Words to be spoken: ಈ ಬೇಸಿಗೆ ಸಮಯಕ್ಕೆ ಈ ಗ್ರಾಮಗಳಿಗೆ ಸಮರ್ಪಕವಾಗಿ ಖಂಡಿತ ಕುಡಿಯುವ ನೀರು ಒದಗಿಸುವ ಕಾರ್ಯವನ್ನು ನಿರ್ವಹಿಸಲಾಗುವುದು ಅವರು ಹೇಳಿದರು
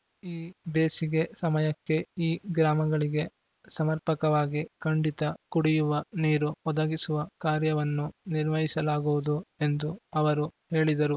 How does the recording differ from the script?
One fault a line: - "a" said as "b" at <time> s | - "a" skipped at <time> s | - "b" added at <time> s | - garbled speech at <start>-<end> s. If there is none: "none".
- "ಎಂದು" added at 9.6 s